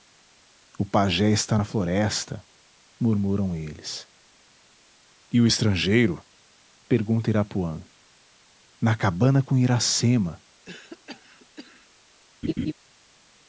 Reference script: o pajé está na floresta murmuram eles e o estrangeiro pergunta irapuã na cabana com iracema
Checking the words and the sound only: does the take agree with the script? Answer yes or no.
no